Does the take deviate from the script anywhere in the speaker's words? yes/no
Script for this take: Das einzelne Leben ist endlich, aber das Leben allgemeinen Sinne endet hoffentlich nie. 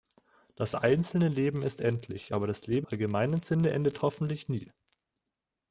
no